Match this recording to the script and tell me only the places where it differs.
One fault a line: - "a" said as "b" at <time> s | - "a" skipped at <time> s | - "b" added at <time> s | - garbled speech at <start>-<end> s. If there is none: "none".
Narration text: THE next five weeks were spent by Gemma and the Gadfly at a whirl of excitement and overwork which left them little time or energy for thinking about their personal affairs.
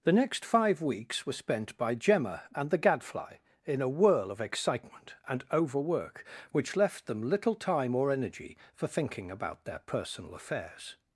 - "at" said as "in" at 3.6 s